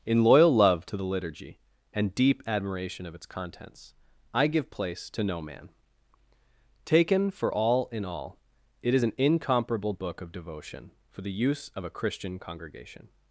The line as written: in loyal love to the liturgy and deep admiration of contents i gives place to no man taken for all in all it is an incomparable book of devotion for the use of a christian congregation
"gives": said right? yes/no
no